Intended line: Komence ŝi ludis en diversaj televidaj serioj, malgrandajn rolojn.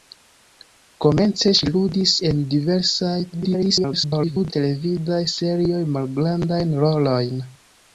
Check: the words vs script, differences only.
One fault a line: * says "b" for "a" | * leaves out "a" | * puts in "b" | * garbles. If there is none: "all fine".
* garbles